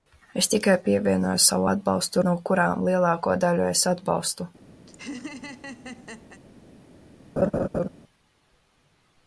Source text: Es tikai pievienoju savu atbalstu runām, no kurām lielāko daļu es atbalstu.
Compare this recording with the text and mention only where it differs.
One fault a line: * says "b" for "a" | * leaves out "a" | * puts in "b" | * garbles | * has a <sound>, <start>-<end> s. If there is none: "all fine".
* leaves out "runām"
* has a laugh, 4.9-6.4 s
* has a laugh, 7.4-7.9 s